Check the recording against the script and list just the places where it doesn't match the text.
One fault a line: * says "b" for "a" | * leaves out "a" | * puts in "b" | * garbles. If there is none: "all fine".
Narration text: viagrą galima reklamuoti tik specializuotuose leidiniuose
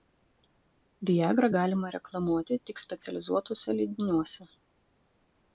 all fine